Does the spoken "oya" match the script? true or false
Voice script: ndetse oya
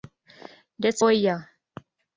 true